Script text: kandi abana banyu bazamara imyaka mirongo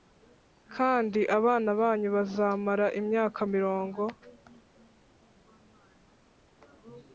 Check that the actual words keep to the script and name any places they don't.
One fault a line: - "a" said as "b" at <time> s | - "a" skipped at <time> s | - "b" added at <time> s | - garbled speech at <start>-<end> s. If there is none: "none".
none